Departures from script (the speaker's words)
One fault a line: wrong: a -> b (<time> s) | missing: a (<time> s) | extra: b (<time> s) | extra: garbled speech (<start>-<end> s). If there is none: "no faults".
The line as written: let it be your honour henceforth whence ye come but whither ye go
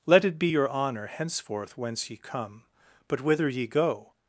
no faults